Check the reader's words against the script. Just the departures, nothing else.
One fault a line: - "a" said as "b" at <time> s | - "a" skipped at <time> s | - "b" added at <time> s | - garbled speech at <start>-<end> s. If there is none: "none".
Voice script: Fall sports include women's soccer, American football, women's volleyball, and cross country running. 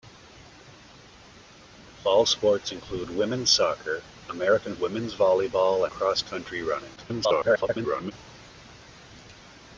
- "football" skipped at 4.8 s
- "and" skipped at 5.9 s
- garbled speech at 7.0-8.1 s